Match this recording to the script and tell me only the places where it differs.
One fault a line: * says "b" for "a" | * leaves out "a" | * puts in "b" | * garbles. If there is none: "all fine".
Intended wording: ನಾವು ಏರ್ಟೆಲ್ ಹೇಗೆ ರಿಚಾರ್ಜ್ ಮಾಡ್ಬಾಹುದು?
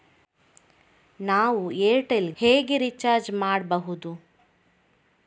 all fine